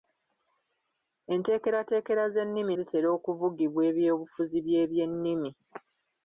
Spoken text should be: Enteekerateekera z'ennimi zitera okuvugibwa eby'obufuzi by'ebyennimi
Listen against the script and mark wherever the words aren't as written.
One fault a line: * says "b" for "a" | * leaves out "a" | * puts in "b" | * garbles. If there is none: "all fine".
all fine